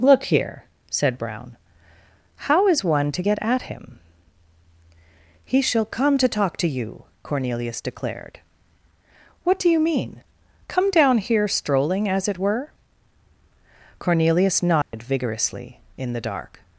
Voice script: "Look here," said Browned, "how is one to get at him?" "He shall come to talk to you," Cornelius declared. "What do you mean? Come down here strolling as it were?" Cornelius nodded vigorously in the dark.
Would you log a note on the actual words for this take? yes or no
yes